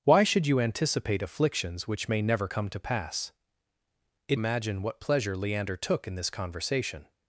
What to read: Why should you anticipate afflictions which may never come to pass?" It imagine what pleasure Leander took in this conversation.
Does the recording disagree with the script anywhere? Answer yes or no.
no